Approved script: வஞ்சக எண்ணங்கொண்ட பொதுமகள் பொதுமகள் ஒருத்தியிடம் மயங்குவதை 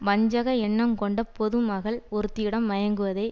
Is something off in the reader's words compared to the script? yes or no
yes